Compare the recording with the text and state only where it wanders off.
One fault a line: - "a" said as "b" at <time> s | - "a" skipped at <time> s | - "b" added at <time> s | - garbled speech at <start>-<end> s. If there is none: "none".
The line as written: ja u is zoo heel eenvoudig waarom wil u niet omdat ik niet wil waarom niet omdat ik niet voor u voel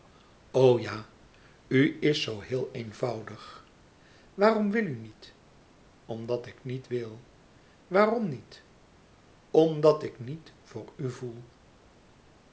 none